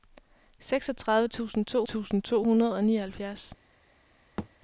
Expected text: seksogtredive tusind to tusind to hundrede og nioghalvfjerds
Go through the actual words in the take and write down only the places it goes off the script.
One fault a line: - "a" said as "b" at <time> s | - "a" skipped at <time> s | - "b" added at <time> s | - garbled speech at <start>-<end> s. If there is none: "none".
none